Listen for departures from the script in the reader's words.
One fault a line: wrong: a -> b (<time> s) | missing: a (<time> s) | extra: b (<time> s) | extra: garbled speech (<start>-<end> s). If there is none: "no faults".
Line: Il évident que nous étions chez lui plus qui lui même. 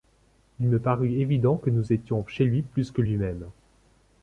extra: me parut (0.7 s)
wrong: qui -> que (2.9 s)